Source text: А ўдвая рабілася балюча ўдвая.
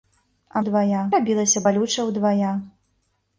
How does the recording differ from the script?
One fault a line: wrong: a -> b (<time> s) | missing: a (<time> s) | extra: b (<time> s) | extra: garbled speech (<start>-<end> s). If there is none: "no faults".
no faults